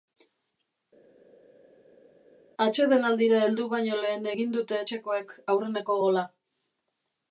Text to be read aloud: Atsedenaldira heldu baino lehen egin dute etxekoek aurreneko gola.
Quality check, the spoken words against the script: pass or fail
pass